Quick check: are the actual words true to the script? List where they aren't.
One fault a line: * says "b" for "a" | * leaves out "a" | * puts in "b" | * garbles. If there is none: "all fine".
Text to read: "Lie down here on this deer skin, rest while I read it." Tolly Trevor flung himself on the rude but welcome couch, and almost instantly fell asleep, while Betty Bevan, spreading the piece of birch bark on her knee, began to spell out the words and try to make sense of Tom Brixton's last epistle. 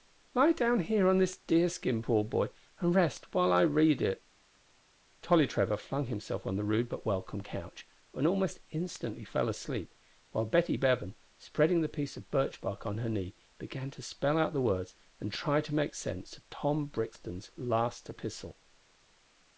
* puts in "poor boy and"